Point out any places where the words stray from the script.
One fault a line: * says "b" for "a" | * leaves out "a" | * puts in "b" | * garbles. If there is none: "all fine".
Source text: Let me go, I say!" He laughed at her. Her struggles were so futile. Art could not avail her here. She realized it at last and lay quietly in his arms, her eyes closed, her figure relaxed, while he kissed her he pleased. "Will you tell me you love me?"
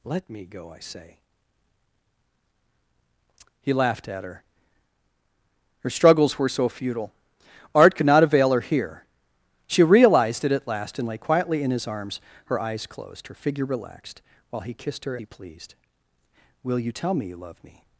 all fine